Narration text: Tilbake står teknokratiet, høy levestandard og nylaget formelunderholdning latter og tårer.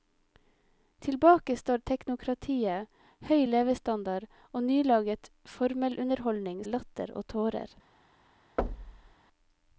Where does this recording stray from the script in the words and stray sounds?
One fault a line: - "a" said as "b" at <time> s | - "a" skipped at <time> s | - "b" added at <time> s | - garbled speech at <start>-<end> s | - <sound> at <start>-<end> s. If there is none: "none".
- thud at 8.6-9.2 s